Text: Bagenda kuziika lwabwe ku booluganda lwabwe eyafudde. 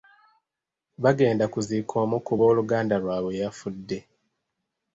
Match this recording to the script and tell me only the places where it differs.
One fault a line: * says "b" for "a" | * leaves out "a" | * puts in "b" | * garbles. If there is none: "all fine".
* says "omu" for "lwabwe"